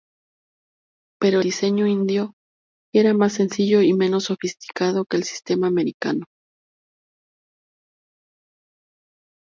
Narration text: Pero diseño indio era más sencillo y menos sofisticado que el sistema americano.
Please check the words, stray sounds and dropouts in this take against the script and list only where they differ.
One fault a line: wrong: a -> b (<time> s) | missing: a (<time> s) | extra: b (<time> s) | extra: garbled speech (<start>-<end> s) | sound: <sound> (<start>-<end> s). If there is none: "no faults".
no faults